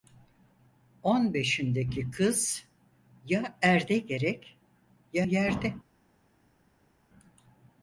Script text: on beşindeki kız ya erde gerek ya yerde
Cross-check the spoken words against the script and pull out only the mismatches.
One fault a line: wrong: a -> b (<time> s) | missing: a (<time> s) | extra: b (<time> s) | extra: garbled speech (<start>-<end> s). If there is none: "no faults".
no faults